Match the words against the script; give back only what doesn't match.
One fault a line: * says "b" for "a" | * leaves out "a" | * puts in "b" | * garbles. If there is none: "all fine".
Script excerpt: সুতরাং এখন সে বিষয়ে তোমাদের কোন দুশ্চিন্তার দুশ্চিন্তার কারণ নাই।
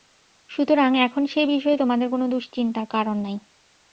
* leaves out "দুশ্চিন্তার"